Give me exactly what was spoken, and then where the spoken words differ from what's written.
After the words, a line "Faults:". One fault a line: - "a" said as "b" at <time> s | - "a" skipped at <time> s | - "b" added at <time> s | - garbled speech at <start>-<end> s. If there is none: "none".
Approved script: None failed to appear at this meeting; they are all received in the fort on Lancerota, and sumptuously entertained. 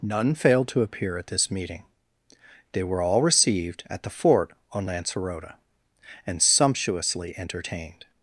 None failed to appear at this meeting; they were all received at the fort on Lancerota, and sumptuously entertained.
Faults:
- "are" said as "were" at 2.8 s
- "in" said as "at" at 3.9 s